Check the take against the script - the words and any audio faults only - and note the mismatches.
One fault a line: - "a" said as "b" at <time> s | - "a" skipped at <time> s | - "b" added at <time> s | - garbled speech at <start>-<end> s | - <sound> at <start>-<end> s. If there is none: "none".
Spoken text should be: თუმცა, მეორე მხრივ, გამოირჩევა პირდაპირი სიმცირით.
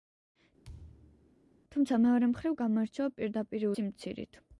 - thud at 0.6-1.4 s